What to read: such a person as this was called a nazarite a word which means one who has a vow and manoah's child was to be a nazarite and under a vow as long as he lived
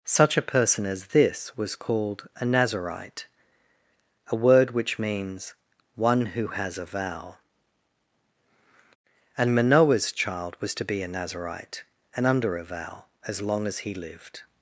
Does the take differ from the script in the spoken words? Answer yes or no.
no